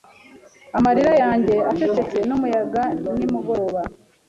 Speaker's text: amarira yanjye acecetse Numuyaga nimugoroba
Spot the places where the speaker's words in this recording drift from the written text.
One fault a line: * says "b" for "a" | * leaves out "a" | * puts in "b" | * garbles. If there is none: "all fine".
all fine